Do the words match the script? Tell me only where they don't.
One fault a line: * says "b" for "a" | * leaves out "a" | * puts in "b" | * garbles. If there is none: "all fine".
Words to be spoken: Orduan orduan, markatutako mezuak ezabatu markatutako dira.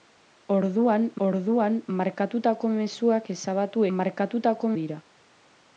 all fine